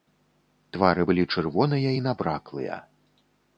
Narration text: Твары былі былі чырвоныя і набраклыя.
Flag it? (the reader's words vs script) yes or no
yes